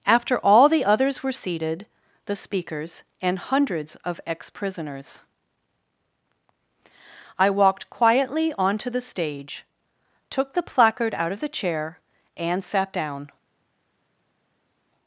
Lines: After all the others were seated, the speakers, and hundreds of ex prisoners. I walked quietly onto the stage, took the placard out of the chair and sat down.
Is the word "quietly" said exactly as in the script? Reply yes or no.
yes